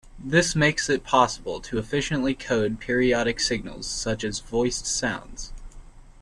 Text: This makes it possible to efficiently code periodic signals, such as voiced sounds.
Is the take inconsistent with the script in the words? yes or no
no